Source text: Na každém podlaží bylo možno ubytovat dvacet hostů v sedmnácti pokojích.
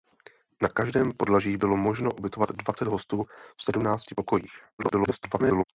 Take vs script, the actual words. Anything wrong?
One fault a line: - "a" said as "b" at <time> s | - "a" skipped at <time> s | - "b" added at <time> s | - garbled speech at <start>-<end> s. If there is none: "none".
- garbled speech at 4.8-5.6 s